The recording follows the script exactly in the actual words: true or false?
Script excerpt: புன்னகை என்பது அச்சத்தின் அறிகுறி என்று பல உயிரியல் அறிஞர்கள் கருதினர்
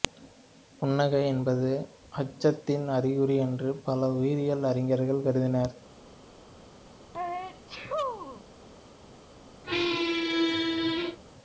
true